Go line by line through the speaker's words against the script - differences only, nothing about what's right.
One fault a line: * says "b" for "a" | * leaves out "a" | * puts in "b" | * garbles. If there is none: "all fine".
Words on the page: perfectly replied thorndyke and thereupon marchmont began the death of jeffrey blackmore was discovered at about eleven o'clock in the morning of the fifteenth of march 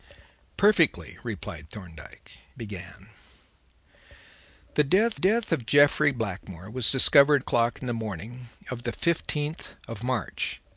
* leaves out "and thereupon marchmont"
* puts in "death"
* leaves out "at about eleven"